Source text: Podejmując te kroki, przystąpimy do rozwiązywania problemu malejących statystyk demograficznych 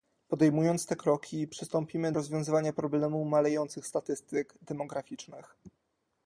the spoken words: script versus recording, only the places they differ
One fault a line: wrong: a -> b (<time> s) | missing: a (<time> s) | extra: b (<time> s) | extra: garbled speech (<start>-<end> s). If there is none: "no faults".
missing: do (2.1 s)